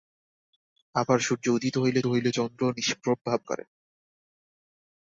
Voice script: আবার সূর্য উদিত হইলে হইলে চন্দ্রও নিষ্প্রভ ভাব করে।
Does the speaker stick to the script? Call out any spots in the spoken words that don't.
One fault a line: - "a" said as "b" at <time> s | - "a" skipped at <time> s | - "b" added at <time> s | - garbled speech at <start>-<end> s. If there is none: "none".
none